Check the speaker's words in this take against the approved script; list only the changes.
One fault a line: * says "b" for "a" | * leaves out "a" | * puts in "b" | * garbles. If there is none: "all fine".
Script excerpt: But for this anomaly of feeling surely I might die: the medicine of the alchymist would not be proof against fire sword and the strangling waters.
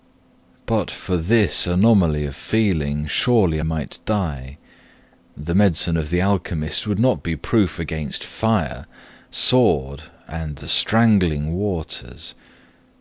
* leaves out "I"